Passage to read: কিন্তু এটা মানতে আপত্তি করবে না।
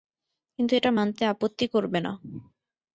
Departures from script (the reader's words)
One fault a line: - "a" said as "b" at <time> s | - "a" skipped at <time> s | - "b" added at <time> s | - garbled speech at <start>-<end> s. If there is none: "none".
none